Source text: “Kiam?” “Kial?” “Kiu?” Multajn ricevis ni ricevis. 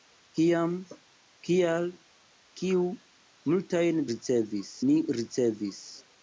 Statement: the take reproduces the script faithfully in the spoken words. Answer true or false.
true